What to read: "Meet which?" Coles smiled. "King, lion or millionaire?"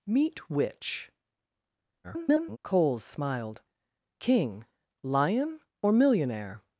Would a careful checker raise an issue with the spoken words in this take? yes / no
yes